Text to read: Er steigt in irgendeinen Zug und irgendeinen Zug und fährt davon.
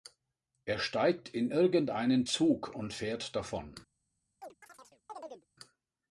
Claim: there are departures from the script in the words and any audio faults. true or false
true